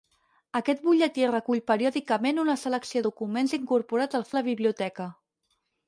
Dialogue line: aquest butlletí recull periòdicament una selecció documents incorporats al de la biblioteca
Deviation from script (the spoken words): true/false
false